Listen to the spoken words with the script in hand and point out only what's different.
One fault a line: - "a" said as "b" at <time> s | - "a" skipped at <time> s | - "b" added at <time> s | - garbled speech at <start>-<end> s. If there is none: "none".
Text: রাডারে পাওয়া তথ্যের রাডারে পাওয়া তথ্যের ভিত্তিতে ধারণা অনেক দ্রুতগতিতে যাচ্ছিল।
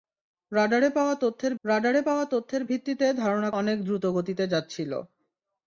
none